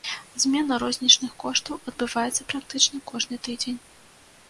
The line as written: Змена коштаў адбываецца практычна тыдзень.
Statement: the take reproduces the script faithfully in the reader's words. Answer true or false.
false